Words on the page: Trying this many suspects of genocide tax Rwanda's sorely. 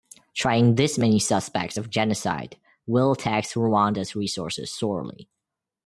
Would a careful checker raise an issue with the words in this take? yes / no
yes